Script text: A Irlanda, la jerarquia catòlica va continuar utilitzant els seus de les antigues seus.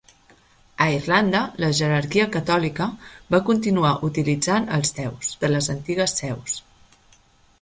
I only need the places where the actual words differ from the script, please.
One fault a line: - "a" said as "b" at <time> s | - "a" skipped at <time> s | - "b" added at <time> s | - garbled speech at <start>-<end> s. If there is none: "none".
none